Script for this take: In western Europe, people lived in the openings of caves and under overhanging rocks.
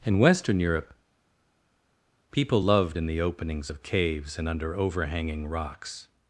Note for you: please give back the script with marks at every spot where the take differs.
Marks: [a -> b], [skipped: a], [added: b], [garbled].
In western Europe, people [lived -> loved] in the openings of caves and under overhanging rocks.